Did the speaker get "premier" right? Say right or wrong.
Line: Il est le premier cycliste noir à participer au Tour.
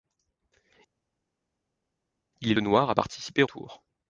wrong